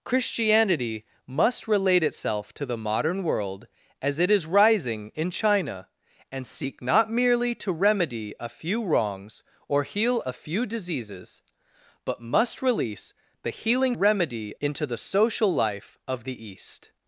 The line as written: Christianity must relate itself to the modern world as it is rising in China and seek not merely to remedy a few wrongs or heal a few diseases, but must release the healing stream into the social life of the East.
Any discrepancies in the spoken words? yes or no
yes